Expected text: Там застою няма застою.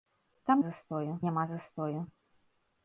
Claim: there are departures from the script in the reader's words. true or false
false